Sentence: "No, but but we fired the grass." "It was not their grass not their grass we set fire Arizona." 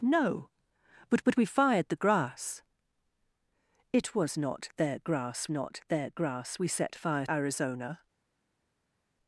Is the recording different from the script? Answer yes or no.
no